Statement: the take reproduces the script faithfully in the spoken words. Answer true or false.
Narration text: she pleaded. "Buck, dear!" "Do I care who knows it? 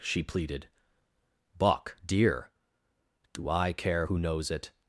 true